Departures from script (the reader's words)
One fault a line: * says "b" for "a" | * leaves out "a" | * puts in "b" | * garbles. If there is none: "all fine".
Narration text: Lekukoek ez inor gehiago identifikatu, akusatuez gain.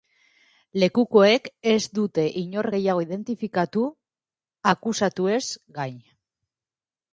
* puts in "dute"